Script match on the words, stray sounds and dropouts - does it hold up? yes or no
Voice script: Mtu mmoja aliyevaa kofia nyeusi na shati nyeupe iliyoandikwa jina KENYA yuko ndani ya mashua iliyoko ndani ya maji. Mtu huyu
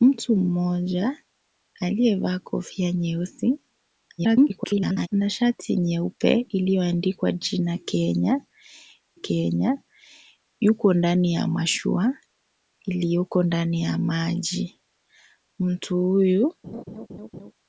no